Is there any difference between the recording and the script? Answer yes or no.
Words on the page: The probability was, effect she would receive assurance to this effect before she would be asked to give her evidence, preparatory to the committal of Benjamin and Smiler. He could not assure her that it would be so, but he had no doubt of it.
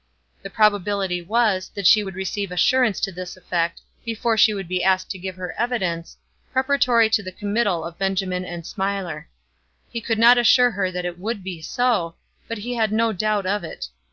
yes